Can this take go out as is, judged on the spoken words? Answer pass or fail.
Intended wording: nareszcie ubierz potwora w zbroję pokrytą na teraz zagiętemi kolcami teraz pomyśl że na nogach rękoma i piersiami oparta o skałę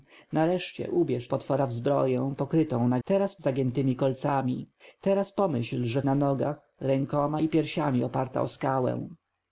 pass